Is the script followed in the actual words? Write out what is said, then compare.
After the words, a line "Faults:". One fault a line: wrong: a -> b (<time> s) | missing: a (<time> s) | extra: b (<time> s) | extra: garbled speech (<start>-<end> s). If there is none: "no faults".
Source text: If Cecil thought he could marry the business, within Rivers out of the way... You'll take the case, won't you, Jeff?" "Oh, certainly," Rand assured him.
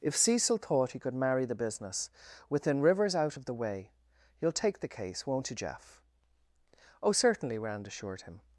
If Cecil thought he could marry the business, within Rivers out of the way... You'll take the case, won't you, Jeff?" "Oh, certainly," Rand assured him.
Faults:
no faults